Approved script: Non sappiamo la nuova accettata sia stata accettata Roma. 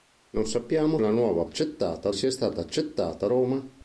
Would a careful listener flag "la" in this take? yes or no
no